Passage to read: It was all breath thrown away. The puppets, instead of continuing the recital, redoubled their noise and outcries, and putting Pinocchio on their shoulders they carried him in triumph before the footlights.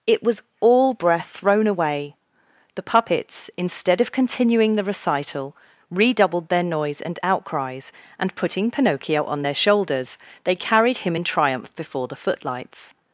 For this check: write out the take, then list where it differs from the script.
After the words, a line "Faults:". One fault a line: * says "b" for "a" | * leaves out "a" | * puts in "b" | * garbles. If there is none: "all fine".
It was all breath thrown away. The puppets, instead of continuing the recital, redoubled their noise and outcries, and putting Pinocchio on their shoulders they carried him in triumph before the footlights.
Faults:
all fine